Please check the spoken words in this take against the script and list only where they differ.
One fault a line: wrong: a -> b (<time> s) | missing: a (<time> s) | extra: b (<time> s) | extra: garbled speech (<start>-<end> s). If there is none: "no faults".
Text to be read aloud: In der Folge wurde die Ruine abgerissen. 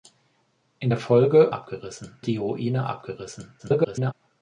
wrong: wurde -> abgerissen (1.5 s)
extra: garbled speech (3.6-4.1 s)